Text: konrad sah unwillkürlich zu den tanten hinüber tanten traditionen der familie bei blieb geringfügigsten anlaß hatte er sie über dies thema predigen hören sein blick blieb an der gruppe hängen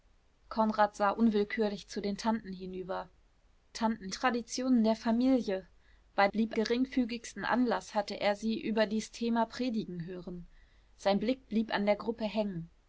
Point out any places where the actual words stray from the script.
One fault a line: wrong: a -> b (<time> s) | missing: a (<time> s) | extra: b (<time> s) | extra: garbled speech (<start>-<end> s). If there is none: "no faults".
no faults